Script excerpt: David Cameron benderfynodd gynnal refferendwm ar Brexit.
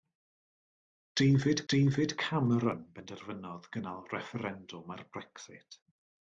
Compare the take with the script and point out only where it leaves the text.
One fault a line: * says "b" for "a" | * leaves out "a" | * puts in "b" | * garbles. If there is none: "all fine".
* puts in "david"